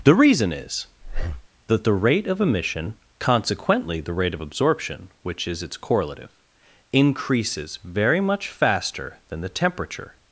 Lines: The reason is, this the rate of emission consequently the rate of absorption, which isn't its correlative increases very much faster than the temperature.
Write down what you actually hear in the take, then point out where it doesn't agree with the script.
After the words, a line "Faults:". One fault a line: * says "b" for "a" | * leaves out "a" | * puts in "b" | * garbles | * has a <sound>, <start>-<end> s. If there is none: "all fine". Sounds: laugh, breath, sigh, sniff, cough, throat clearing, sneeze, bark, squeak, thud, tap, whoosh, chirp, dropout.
The reason is, that the rate of emission consequently the rate of absorption, which is its correlative increases very much faster than the temperature.
Faults:
* has a breath, 1.0-1.5 s
* says "that" for "this"
* says "is" for "isn't"